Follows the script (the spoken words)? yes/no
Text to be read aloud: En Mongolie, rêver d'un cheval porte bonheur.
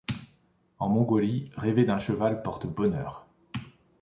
yes